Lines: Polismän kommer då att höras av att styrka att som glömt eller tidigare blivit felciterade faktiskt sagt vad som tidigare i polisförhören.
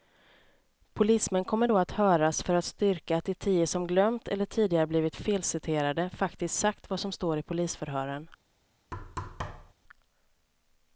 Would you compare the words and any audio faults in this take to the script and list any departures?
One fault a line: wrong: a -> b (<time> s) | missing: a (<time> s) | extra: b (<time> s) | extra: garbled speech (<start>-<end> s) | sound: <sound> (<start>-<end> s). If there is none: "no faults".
wrong: av -> för (2.4 s)
extra: de tio (3.2 s)
wrong: tidigare -> står (7.1 s)
sound: thud (8.9-9.7 s)